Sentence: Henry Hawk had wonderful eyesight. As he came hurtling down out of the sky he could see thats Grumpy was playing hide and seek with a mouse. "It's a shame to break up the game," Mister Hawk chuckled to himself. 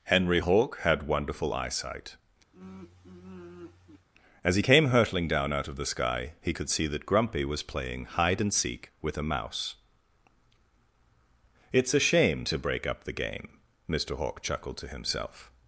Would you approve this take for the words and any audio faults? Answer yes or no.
no